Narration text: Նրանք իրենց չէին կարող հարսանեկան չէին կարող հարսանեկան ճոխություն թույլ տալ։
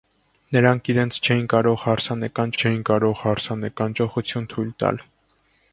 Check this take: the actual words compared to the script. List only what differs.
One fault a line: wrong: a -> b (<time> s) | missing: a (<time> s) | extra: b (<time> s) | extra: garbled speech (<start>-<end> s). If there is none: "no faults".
no faults